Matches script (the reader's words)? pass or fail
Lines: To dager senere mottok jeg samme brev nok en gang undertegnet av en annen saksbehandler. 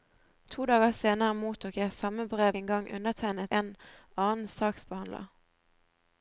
fail